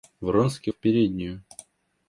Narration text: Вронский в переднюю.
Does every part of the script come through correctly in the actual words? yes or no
yes